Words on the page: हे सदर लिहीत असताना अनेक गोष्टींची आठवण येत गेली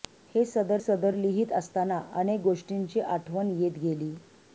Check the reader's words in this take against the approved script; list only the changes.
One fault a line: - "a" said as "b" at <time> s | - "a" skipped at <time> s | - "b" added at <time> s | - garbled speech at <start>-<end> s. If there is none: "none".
- "सदर" added at 0.8 s